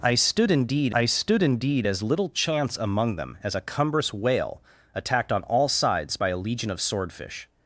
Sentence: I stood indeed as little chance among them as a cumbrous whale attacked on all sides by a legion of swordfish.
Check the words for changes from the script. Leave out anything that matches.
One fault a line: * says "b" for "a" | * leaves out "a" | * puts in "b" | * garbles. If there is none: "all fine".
* puts in "I stood indeed"